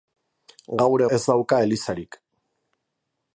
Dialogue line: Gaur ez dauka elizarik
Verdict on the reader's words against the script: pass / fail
pass